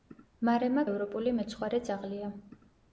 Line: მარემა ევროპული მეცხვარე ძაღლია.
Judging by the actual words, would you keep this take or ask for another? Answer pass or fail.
pass